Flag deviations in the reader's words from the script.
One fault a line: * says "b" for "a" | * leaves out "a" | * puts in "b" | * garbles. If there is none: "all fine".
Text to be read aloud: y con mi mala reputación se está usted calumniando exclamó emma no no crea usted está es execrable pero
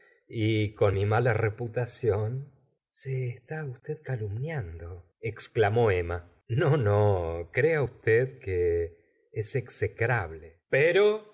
* says "que" for "está"